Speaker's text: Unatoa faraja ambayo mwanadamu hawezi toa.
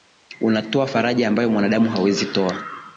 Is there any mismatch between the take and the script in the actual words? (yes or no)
no